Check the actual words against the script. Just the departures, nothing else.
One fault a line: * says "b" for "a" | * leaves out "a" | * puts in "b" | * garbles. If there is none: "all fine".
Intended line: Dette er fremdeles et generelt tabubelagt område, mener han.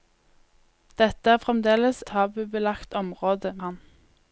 * leaves out "et generelt"
* leaves out "mener"